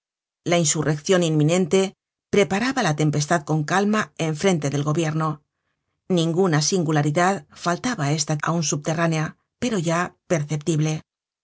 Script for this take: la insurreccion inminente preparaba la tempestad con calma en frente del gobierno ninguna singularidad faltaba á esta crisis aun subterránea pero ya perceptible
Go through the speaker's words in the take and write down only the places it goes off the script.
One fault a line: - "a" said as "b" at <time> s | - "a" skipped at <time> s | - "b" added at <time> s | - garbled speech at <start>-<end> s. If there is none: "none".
- "crisis" skipped at 8.3 s